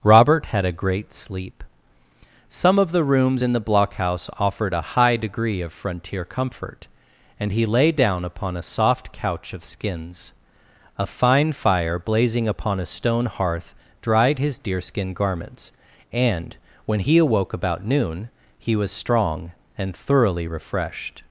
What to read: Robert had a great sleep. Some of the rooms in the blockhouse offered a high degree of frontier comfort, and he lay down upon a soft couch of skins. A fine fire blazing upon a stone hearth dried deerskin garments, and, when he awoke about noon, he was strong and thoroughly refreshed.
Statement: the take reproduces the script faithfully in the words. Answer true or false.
false